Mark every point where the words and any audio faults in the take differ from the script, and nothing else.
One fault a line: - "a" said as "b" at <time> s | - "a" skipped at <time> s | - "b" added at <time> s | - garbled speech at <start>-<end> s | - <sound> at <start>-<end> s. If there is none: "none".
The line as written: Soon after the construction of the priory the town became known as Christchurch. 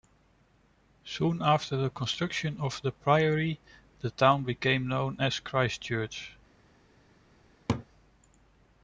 - laugh at 7.7-7.9 s